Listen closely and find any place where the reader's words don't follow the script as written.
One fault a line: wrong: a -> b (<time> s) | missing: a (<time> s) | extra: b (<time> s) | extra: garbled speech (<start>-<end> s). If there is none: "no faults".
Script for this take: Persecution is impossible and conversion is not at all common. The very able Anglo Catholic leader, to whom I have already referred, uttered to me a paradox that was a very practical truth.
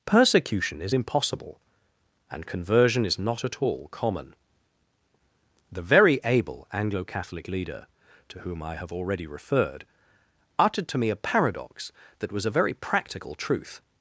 no faults